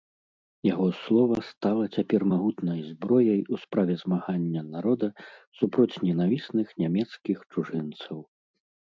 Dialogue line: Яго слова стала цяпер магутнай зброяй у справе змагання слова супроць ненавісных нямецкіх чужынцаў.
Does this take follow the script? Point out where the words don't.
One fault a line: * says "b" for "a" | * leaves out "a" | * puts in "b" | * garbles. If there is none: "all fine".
* says "народа" for "слова"